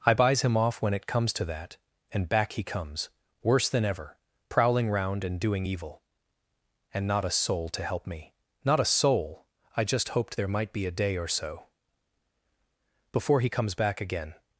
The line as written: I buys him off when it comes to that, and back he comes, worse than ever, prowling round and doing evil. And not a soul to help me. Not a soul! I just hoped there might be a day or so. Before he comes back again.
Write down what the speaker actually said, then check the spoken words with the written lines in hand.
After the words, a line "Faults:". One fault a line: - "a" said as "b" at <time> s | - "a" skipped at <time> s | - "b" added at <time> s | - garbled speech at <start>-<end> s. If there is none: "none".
I buys him off when it comes to that, and back he comes, worse than ever, prowling round and doing evil. And not a soul to help me. Not a soul! I just hoped there might be a day or so. Before he comes back again.
Faults:
none